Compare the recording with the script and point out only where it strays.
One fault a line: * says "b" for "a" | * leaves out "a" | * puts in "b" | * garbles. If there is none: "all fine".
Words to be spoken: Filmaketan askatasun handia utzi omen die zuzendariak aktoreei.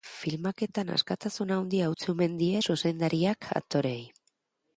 all fine